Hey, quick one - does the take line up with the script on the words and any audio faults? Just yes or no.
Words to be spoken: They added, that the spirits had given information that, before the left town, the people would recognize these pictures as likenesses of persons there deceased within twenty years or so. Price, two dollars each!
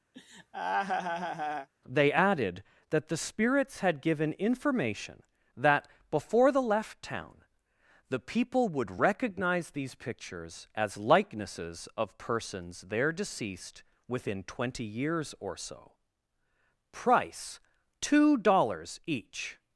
no